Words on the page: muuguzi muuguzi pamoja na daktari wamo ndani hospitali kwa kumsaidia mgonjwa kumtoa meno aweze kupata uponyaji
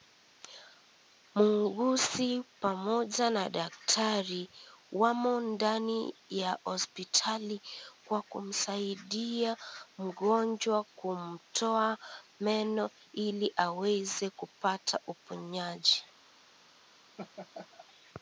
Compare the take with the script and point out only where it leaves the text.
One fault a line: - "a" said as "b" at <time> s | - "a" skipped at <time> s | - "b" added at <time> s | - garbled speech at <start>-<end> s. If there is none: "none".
- "muuguzi" skipped at 2.3 s
- "ya" added at 6.3 s
- "ili" added at 13.1 s